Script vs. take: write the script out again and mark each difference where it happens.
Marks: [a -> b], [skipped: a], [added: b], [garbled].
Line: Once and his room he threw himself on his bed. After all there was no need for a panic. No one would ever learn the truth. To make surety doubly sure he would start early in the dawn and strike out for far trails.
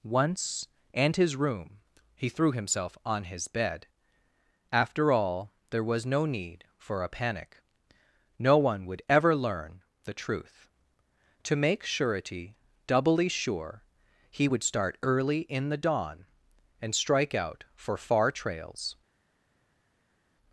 Once and his room he threw himself on his bed. After all there was no need for a panic. No one would ever learn the truth. To make surety doubly sure he would start early in the dawn and strike out for far trails.